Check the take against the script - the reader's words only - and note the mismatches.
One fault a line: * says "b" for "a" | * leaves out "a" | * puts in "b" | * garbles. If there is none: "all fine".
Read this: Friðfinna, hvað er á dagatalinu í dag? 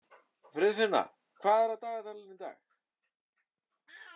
all fine